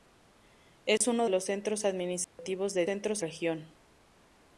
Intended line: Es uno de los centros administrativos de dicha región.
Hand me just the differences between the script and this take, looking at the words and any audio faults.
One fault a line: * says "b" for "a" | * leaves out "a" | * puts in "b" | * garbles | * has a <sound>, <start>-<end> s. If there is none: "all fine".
* has a dropout, 1.0-1.0 s
* leaves out "de"
* has a dropout, 2.2-2.4 s
* says "centros" for "dicha"